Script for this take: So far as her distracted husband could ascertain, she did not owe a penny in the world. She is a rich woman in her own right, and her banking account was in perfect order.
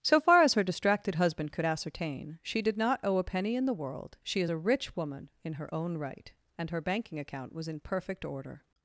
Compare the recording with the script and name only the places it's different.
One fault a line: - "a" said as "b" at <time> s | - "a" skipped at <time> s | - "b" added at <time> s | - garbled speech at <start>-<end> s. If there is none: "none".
none